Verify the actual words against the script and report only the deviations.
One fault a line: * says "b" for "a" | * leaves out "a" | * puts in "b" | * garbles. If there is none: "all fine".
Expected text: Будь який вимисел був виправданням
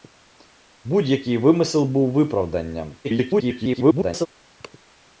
* garbles